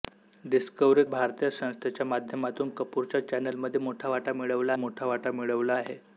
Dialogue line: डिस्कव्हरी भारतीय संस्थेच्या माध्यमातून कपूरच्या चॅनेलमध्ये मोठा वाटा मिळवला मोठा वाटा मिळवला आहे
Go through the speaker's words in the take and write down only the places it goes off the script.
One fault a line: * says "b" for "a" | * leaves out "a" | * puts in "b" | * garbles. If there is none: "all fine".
all fine